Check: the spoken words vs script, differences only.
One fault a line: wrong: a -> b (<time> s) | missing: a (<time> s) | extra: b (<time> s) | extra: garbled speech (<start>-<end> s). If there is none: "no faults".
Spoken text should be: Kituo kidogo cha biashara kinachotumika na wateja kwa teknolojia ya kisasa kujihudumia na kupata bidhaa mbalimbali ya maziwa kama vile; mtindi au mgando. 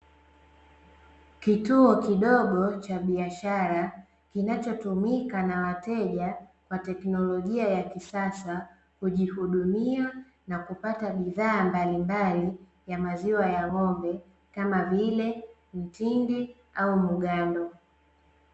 extra: ya ng'ombe (13.5 s)